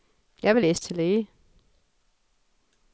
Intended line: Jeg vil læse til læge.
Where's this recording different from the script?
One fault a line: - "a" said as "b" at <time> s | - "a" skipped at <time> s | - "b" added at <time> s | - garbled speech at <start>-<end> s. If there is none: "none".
none